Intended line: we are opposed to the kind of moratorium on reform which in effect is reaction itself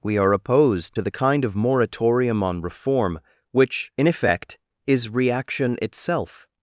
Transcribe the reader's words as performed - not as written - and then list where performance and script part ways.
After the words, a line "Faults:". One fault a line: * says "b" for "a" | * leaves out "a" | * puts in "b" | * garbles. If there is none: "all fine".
we are opposed to the kind of moratorium on reform which in effect is reaction itself
Faults:
all fine